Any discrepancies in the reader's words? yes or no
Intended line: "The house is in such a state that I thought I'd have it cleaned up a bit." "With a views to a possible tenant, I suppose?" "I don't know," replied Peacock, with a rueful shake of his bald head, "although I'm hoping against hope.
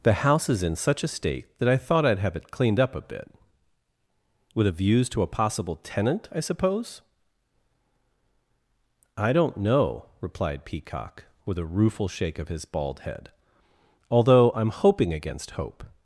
no